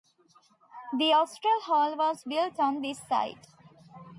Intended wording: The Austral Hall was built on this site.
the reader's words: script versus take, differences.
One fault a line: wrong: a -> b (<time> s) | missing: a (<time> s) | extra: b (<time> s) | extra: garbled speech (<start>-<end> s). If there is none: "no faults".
no faults